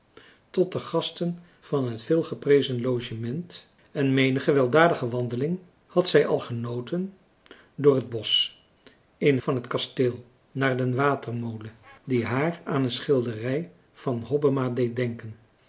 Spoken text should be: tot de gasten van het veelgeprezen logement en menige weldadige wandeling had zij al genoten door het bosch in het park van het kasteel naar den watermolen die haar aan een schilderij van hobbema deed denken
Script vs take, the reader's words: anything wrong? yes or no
yes